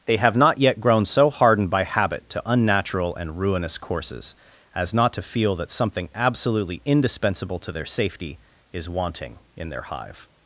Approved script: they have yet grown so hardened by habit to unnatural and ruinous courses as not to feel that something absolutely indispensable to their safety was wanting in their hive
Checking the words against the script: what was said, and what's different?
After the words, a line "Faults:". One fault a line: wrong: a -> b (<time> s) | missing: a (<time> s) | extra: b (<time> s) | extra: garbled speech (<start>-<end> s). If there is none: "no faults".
they have not yet grown so hardened by habit to unnatural and ruinous courses as not to feel that something absolutely indispensable to their safety is wanting in their hive
Faults:
extra: not (0.3 s)
wrong: was -> is (8.7 s)